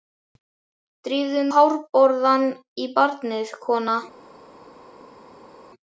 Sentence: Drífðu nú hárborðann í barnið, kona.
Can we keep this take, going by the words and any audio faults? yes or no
no